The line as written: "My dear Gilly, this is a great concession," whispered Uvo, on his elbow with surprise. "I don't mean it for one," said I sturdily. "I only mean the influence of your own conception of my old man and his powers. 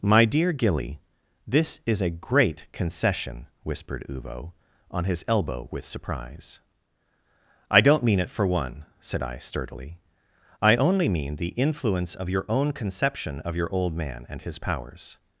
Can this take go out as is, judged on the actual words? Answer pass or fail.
fail